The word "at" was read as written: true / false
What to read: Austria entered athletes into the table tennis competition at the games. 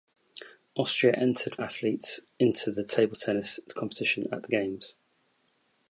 true